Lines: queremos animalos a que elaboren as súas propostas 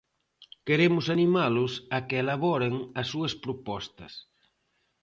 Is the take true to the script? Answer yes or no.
yes